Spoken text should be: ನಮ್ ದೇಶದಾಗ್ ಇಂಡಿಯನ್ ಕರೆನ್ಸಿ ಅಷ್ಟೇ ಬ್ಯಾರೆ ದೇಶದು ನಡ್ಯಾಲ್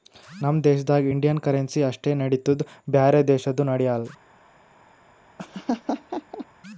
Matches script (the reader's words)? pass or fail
fail